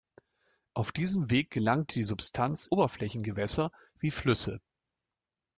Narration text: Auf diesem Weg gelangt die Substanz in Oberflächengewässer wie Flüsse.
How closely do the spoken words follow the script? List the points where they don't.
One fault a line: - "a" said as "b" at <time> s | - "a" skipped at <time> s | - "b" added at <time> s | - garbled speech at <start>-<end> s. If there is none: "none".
- "in" skipped at 2.6 s